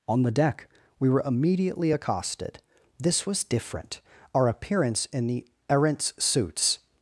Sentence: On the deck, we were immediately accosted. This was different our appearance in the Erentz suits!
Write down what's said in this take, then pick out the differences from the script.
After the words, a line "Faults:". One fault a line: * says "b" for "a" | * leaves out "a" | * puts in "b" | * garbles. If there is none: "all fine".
On the deck, we were immediately accosted. This was different our appearance in the Erentz suits!
Faults:
all fine